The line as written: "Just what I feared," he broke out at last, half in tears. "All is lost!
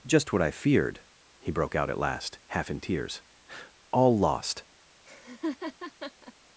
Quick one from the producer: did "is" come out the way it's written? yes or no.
no